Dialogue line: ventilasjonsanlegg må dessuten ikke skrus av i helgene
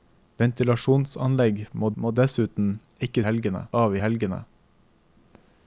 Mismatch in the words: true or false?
true